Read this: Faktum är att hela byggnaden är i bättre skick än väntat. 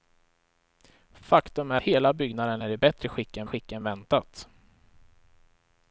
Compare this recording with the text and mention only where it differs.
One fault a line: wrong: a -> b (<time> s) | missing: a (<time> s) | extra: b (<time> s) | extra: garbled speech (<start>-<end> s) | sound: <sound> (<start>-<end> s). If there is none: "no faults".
missing: att (1.8 s)
extra: skick än (3.4 s)